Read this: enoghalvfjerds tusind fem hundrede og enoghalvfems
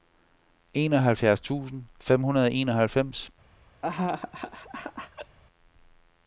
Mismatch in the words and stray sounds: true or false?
true